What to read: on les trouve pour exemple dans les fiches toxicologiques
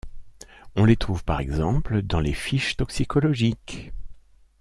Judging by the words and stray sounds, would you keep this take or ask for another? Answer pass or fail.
fail